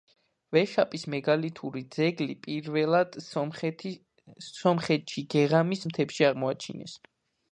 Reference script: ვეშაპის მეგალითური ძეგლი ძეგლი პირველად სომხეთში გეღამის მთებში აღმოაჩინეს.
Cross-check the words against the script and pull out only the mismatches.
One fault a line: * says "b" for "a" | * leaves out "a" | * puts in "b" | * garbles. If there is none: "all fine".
* leaves out "ძეგლი"